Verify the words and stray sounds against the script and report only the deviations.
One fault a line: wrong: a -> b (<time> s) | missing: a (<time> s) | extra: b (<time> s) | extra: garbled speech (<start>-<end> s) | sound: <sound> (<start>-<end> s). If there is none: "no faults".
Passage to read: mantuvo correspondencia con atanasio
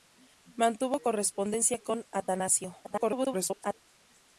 extra: garbled speech (2.8-3.7 s)